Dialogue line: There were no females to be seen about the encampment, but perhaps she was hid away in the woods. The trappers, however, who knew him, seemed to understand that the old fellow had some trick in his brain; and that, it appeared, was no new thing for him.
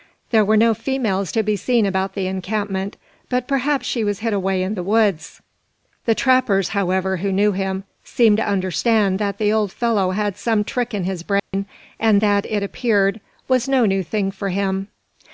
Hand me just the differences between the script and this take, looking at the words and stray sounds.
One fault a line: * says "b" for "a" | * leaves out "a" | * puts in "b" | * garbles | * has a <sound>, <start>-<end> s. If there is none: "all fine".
* has a dropout, 11.4-11.5 s